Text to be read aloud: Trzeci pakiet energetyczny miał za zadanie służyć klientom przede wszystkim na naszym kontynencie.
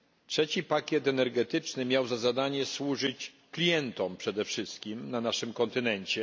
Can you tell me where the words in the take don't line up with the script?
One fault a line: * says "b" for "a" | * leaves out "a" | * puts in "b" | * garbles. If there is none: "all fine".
all fine